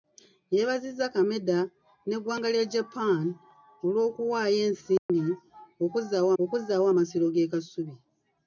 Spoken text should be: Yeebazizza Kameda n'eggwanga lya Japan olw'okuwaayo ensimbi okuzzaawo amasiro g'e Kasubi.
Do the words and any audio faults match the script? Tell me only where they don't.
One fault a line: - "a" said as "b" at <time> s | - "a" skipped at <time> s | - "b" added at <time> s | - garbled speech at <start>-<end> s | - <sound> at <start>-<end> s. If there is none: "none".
- dropout at 5.0-5.1 s
- "okuzzaawo" added at 6.4 s